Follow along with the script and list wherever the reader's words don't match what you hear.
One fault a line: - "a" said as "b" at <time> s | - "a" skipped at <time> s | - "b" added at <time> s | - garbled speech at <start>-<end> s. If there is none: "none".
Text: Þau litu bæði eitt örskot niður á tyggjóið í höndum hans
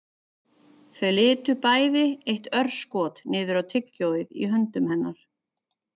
- "hans" said as "hennar" at 4.9 s